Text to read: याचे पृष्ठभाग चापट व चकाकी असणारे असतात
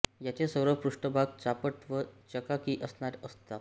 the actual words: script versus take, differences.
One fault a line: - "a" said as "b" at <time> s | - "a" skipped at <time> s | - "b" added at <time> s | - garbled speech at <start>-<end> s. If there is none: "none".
- "सर्व" added at 0.5 s